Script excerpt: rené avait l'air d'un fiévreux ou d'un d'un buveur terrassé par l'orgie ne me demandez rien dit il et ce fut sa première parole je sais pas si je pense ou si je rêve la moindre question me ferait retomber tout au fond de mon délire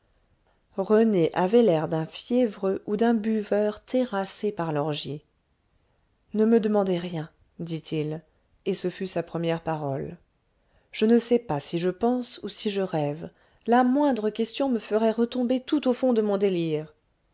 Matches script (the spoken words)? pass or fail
fail